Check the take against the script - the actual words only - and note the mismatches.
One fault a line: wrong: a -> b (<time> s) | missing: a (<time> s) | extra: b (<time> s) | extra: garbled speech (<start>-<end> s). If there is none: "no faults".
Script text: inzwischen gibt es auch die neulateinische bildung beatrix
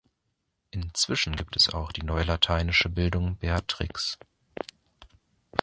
no faults